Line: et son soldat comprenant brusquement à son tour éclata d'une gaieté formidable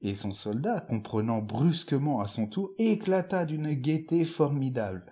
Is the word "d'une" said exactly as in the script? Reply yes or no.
yes